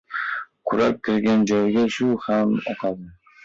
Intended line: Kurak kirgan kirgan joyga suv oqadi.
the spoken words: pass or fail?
fail